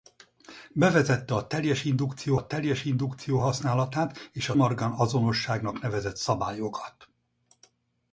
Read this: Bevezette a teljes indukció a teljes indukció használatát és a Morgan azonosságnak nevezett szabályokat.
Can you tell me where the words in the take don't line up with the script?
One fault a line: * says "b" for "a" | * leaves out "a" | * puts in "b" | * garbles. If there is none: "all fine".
all fine